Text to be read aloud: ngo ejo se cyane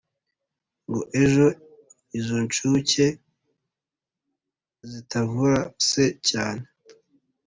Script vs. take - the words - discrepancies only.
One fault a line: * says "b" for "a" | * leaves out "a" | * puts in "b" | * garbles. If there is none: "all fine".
* puts in "izo nshuke zitavura"